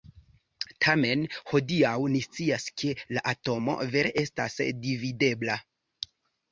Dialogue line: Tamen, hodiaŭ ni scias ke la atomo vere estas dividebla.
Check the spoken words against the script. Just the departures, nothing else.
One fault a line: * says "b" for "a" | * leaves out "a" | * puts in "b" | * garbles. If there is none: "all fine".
all fine